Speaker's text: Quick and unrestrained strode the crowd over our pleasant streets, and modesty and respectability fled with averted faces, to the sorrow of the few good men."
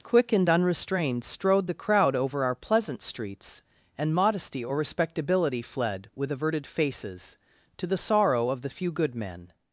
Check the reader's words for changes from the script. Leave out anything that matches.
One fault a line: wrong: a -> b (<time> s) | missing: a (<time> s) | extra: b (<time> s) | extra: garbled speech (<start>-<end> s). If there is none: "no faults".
wrong: and -> or (4.6 s)